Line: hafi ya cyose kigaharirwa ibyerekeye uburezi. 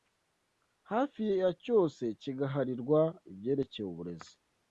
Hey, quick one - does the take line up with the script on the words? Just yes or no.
yes